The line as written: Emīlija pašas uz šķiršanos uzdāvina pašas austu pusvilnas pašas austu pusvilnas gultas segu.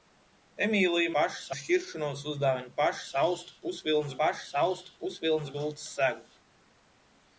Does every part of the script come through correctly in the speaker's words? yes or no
yes